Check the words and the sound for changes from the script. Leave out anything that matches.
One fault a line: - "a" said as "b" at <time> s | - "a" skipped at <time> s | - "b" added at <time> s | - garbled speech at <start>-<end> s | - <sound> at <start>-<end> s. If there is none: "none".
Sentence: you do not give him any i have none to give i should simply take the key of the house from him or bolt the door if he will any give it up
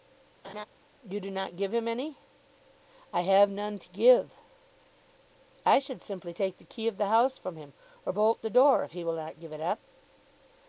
- laugh at 0.4-0.7 s
- "any" said as "not" at 9.2 s